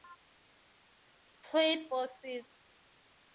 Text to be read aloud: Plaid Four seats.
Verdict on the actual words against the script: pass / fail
pass